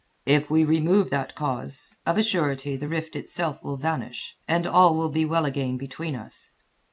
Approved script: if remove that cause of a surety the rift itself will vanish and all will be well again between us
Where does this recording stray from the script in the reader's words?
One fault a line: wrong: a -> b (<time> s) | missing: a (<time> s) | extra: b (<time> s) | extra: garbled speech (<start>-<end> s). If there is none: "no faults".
extra: we (0.5 s)